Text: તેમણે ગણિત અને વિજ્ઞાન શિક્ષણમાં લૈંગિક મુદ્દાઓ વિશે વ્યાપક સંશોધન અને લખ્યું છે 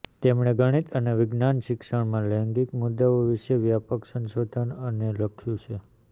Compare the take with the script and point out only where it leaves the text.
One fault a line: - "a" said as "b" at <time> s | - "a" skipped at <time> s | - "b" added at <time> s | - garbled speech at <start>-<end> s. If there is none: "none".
none